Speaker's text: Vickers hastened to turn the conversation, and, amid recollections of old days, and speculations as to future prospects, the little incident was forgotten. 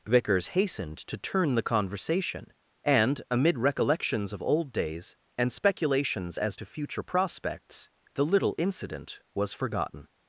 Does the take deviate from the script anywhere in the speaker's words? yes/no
no